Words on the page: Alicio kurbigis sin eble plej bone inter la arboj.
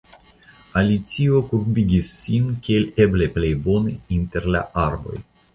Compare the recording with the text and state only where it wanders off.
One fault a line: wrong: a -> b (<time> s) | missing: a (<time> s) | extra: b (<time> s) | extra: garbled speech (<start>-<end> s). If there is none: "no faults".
extra: kiel (2.7 s)